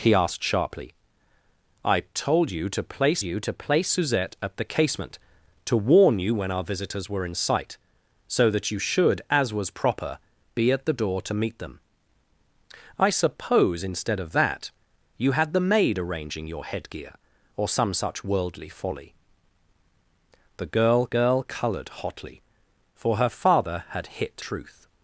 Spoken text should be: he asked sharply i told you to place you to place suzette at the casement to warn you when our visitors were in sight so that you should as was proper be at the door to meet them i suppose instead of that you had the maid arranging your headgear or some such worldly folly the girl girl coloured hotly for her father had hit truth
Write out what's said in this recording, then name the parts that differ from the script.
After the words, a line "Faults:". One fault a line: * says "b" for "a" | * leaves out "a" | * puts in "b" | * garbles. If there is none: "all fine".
he asked sharply i told you to place you to place suzette at the casement to warn you when our visitors were in sight so that you should as was proper be at the door to meet them i suppose instead of that you had the maid arranging your headgear or some such worldly folly the girl girl coloured hotly for her father had hit truth
Faults:
all fine